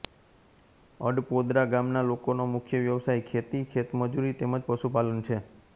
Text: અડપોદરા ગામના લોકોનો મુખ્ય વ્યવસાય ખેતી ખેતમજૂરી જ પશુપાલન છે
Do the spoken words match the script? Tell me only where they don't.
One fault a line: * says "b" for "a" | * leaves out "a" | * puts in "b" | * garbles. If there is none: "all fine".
* puts in "તેમ"